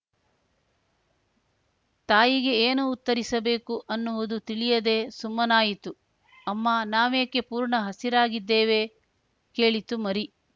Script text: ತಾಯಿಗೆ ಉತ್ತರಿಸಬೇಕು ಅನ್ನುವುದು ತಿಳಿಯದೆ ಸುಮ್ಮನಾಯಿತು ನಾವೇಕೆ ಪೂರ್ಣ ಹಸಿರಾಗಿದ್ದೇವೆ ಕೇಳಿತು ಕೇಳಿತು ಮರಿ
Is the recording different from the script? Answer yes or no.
yes